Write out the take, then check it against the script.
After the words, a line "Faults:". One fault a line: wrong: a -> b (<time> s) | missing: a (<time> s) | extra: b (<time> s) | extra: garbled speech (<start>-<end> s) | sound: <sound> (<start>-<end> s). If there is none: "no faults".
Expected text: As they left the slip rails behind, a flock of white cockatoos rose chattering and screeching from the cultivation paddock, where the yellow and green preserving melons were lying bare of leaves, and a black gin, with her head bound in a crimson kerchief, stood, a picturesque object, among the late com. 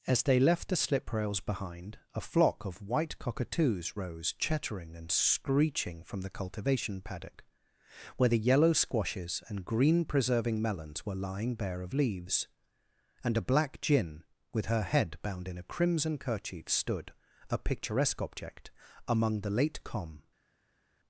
As they left the slip rails behind, a flock of white cockatoos rose chattering and screeching from the cultivation paddock, where the yellow squashes and green preserving melons were lying bare of leaves, and a black gin, with her head bound in a crimson kerchief, stood, a picturesque object, among the late com.
Faults:
extra: squashes (8.7 s)